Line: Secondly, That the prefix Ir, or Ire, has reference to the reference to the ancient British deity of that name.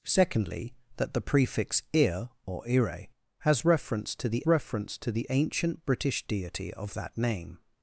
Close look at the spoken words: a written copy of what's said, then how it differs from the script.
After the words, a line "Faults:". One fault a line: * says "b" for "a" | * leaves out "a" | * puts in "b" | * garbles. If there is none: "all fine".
Secondly, That the prefix Ir, or Ire, has reference to the reference to the ancient British deity of that name.
Faults:
all fine